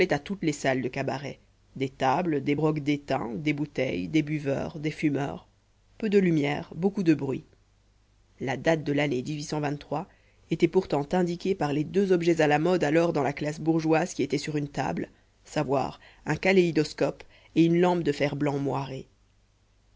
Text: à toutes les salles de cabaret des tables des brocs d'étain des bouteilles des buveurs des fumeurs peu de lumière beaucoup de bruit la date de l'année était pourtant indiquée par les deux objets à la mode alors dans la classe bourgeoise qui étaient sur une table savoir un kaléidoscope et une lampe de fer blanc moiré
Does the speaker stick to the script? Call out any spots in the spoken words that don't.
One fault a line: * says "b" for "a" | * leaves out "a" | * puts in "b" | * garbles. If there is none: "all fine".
all fine